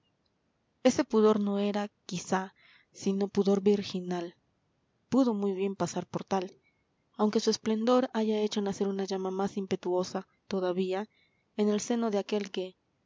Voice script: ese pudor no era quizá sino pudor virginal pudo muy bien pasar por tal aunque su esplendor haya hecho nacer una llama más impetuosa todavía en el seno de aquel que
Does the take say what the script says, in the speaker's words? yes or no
yes